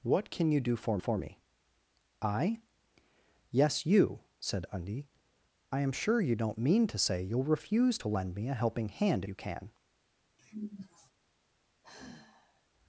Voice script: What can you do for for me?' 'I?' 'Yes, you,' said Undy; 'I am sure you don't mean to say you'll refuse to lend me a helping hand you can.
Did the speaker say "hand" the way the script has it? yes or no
yes